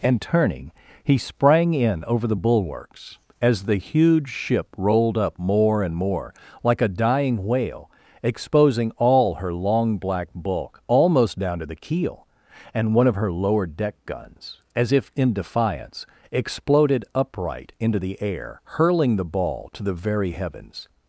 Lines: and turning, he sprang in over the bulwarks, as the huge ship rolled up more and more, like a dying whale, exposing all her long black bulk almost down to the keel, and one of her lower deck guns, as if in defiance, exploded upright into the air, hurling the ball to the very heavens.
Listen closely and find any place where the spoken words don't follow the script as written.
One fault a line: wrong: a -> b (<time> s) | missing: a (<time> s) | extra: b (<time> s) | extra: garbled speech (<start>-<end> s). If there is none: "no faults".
no faults